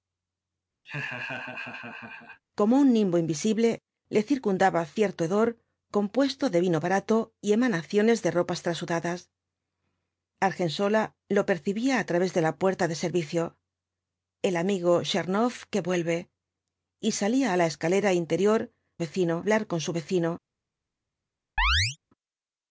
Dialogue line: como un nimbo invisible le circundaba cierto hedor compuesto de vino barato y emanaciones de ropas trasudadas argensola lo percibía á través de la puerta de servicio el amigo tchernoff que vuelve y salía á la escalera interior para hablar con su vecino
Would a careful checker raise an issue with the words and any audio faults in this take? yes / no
yes